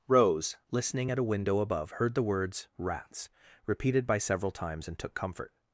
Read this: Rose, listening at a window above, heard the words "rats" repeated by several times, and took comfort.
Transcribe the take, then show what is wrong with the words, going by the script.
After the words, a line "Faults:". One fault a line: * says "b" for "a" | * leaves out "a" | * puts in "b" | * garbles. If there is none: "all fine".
Rose, listening at a window above, heard the words "rats" repeated by several times, and took comfort.
Faults:
all fine